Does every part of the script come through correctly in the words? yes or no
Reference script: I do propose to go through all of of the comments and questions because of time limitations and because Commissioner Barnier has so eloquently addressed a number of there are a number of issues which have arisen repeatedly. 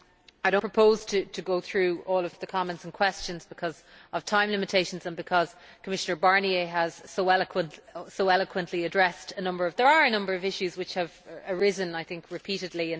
yes